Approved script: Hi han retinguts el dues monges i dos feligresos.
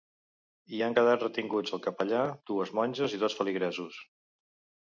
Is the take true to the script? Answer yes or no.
no